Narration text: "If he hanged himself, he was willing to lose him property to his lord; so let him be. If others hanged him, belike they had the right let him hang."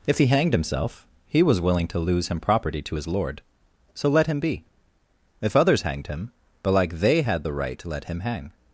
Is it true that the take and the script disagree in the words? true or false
true